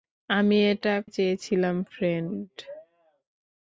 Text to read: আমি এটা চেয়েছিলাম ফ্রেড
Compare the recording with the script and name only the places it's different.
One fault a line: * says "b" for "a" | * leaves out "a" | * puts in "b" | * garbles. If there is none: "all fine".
all fine